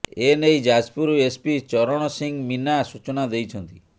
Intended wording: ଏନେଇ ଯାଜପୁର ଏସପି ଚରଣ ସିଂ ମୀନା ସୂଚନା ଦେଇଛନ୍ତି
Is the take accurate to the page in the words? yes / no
yes